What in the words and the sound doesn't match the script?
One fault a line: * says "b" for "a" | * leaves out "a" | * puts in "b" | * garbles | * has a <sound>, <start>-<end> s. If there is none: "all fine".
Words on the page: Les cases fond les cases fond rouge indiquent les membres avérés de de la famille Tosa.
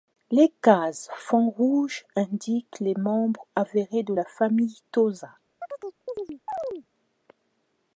* leaves out "les cases fond"
* leaves out "de"
* has a chirp, 5.6-6.9 s